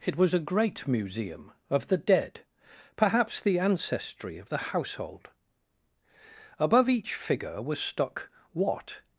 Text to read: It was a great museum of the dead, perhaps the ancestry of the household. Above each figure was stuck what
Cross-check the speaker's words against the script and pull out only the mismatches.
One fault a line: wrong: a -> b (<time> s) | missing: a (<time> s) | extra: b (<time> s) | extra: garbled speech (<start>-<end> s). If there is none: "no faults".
no faults